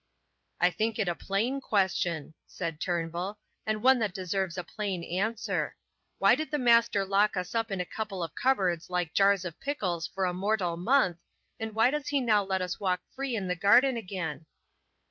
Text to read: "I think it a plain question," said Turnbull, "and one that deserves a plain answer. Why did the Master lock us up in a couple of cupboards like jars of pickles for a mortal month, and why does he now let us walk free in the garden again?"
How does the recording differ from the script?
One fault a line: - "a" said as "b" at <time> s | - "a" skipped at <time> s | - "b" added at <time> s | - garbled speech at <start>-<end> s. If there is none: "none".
none